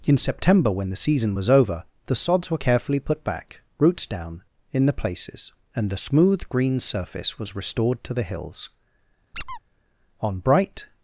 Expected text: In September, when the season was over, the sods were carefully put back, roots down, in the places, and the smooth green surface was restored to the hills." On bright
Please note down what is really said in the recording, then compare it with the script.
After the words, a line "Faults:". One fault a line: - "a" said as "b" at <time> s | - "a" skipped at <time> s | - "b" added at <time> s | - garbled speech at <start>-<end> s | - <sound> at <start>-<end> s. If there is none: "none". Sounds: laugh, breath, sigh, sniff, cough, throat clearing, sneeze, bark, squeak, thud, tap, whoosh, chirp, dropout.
In September, when the season was over, the sods were carefully put back, roots down, in the places, and the smooth green surface was restored to the hills." On bright
Faults:
- squeak at 9.3-9.6 s